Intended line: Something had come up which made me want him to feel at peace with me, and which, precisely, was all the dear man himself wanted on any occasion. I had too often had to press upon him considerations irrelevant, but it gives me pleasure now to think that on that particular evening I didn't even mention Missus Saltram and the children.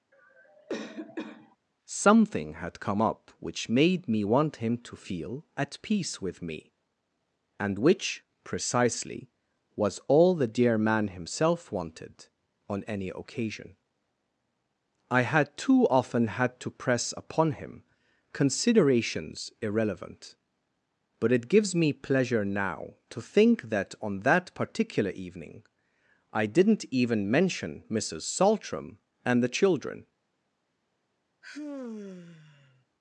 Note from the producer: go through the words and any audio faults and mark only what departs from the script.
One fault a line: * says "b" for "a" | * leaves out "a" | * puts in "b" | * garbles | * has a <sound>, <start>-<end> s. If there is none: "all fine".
* has a cough, 0.1-1.6 s
* has a sigh, 31.4-32.9 s